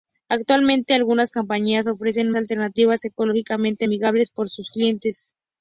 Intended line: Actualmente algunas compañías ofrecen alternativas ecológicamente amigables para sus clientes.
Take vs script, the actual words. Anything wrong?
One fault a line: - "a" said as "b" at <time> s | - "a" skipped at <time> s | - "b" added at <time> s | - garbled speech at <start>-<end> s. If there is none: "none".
none